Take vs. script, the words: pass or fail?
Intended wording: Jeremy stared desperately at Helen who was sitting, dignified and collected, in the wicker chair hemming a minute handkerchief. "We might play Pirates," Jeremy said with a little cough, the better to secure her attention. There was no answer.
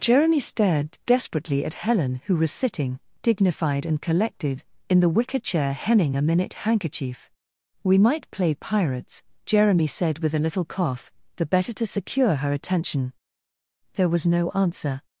pass